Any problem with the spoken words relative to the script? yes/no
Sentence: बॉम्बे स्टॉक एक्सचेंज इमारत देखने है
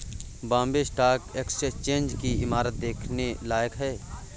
yes